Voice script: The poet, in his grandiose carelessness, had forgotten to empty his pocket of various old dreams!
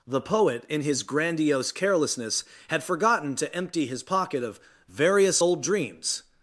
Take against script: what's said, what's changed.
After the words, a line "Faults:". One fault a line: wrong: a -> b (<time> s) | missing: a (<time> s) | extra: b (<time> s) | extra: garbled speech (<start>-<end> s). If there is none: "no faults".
The poet, in his grandiose carelessness, had forgotten to empty his pocket of various old dreams!
Faults:
no faults